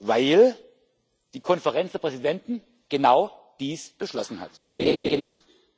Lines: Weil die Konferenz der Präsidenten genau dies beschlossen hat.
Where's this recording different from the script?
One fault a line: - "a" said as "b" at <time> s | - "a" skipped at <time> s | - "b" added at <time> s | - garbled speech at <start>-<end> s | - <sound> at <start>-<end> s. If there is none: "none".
- laugh at 4.8-5.2 s